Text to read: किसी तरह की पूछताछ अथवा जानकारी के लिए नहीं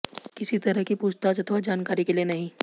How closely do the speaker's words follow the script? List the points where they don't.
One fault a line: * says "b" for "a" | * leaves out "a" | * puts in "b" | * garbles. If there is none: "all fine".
all fine